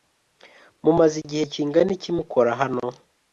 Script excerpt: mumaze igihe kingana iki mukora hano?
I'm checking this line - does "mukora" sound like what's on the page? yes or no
yes